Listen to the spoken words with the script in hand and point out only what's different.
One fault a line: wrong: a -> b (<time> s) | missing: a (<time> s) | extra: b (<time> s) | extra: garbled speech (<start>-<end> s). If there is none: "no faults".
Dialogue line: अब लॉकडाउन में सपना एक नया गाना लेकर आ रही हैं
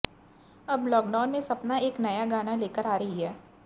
no faults